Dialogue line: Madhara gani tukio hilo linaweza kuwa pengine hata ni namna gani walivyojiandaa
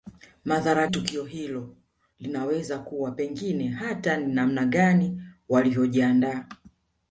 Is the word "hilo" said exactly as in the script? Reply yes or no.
yes